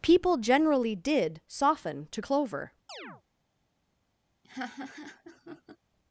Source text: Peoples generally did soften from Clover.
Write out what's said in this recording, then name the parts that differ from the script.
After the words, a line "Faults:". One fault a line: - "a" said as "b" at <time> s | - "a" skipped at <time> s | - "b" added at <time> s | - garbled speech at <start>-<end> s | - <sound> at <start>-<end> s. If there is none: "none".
People generally did soften to Clover.
Faults:
- "Peoples" said as "People" at 0.0 s
- "from" said as "to" at 2.1 s
- chirp at 2.9-3.2 s
- laugh at 4.4-5.8 s